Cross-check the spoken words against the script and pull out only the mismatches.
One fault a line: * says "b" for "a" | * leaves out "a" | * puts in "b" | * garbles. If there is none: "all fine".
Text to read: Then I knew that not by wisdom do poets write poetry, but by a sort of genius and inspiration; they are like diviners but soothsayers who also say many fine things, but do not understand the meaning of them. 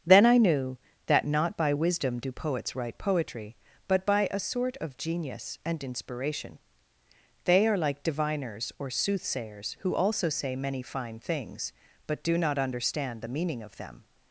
* says "or" for "but"